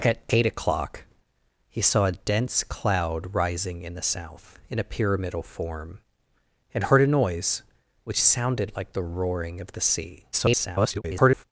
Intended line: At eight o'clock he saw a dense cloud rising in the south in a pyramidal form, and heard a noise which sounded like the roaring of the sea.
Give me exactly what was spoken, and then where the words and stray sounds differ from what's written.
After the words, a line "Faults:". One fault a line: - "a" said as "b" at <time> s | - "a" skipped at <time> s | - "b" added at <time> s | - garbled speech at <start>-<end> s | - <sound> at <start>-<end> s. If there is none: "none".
At eight o'clock he saw a dense cloud rising in the south in a pyramidal form, and heard a noise which sounded like the roaring of the sea. [garbled]
Faults:
- garbled speech at 10.3-11.4 s